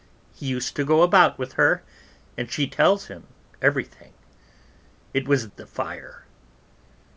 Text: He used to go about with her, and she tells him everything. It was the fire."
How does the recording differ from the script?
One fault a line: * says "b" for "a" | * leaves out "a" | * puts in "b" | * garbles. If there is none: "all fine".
all fine